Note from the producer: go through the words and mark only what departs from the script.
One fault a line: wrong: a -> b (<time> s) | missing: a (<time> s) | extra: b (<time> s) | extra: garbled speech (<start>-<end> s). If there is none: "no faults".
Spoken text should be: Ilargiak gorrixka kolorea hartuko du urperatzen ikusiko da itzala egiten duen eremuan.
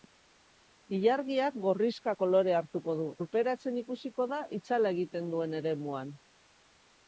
no faults